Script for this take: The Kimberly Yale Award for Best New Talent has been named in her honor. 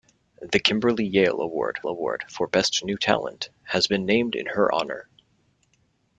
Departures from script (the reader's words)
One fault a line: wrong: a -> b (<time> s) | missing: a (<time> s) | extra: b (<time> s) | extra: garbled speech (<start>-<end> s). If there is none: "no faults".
extra: Award (1.9 s)